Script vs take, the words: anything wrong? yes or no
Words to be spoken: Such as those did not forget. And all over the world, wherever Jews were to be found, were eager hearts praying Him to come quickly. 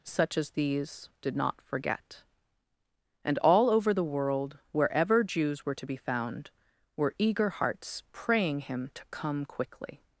yes